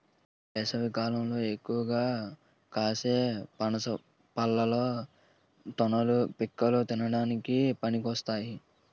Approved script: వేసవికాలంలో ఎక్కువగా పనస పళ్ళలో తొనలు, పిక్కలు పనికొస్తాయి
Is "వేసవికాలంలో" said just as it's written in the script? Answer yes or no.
yes